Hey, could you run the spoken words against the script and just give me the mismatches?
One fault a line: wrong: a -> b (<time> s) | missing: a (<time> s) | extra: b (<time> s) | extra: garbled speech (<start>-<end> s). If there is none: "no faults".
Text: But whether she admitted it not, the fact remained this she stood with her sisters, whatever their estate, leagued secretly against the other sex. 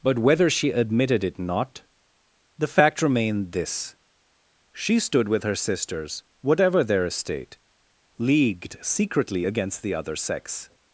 no faults